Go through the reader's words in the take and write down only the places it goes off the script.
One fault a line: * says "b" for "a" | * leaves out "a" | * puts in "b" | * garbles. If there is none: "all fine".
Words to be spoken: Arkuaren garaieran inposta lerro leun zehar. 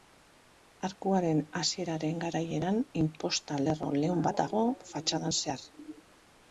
* puts in "hasieraren"
* puts in "bat dago fatxadan"